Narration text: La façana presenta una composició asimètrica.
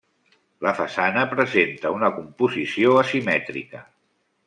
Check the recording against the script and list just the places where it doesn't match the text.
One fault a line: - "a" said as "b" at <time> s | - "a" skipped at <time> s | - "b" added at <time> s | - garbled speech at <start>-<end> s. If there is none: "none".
none